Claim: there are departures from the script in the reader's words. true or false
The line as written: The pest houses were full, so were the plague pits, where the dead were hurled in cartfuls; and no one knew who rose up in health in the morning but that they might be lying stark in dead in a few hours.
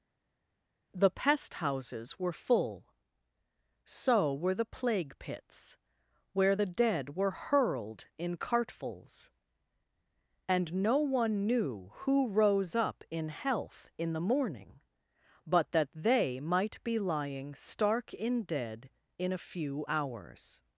false